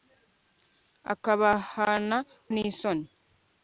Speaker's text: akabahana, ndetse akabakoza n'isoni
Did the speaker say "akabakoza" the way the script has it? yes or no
no